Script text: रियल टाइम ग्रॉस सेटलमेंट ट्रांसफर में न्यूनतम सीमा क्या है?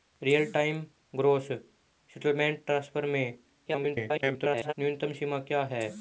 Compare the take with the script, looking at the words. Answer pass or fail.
fail